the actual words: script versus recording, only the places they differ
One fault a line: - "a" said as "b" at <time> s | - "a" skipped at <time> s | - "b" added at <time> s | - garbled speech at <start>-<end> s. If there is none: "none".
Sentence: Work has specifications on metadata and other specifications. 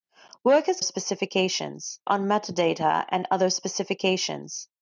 none